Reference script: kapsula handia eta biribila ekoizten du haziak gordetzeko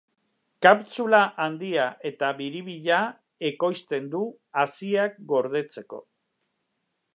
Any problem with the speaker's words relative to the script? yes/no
no